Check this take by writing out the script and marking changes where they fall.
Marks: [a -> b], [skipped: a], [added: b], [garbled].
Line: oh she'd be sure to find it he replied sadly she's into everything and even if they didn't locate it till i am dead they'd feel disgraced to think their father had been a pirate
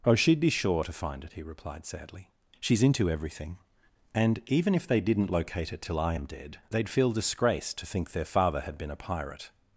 oh she'd be sure to find it he replied sadly she's into everything and even if they didn't locate it till i am dead they'd feel disgraced to think their father had been a pirate